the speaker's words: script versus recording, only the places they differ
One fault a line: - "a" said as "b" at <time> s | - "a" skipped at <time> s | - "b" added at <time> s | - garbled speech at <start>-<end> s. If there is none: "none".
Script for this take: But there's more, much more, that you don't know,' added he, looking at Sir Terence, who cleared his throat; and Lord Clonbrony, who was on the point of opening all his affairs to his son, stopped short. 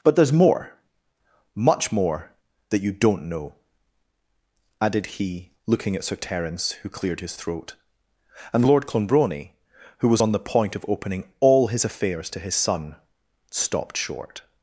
none